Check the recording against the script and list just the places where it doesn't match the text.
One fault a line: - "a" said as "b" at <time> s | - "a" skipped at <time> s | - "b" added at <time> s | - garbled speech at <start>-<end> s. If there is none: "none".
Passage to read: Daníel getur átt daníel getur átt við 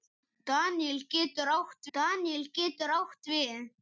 none